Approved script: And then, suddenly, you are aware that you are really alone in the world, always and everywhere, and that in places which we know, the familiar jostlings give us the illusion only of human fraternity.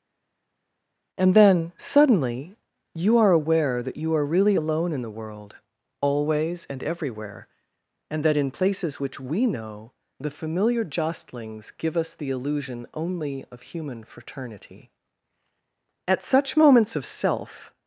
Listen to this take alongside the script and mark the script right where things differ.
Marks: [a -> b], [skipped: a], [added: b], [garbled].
And then, suddenly, you are aware that you are really alone in the world, always and everywhere, and that in places which we know, the familiar jostlings give us the illusion only of human fraternity. [added: At such moments of self]